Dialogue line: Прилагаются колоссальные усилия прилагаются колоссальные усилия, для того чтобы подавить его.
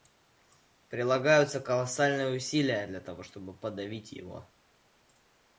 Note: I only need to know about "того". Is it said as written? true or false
true